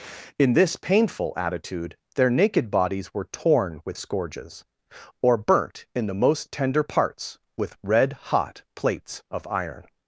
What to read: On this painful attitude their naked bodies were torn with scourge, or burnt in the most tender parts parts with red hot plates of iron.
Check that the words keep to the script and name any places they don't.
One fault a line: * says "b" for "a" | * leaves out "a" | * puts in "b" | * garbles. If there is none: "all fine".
* says "In" for "On"
* says "scourges" for "scourge"
* leaves out "parts"